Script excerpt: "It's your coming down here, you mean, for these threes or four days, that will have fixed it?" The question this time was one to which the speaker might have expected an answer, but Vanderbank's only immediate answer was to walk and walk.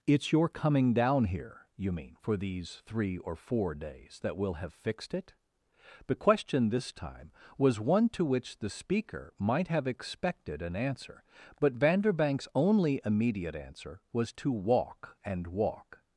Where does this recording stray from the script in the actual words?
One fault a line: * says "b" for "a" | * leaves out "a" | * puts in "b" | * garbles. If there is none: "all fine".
* says "three" for "threes"